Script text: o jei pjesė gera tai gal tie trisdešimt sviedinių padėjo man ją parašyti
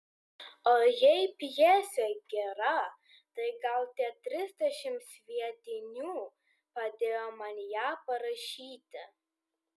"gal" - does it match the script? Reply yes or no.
yes